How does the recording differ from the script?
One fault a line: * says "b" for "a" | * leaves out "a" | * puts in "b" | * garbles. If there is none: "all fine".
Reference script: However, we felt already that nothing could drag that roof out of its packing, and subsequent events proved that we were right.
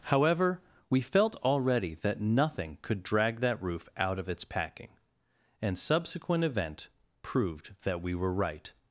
* says "event" for "events"